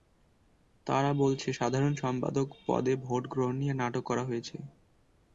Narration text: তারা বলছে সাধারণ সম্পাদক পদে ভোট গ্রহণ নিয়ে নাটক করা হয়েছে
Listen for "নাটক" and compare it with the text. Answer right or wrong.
right